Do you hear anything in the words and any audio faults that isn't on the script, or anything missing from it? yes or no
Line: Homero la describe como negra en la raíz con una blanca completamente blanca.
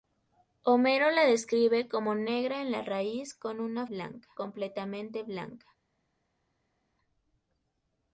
no